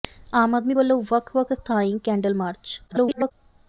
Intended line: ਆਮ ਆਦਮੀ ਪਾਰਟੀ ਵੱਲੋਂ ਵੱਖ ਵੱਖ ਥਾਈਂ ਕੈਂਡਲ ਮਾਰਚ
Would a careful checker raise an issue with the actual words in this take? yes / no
yes